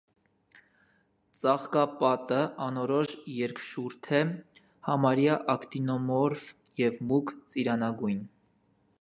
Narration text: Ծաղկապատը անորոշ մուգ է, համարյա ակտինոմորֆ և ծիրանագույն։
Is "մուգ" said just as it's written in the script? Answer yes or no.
no